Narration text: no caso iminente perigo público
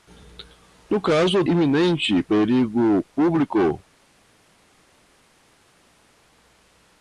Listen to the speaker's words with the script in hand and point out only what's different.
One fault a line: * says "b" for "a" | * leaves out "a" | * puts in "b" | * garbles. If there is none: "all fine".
all fine